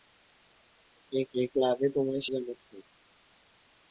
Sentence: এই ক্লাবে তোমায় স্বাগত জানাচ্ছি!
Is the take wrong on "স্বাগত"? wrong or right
wrong